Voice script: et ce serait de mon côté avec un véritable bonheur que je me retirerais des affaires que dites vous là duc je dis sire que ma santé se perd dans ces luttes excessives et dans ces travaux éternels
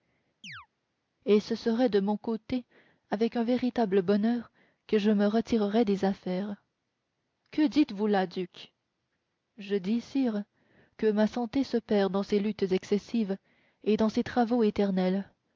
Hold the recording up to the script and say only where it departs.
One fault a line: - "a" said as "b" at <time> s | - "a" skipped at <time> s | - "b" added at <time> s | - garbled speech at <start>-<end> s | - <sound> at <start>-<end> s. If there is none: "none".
- chirp at 0.4-0.7 s